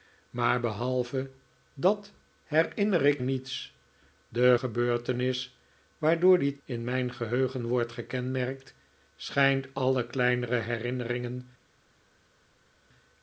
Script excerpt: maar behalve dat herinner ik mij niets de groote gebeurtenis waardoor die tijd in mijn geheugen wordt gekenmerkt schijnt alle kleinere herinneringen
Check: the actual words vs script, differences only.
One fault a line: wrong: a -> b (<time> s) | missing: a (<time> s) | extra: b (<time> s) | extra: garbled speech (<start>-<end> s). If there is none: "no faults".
missing: mij (3.2 s)
missing: groote (4.6 s)
missing: tijd (6.6 s)